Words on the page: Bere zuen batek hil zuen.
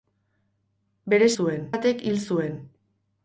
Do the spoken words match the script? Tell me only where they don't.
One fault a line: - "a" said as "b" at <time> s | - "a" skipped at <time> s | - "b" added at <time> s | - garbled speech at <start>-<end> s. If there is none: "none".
none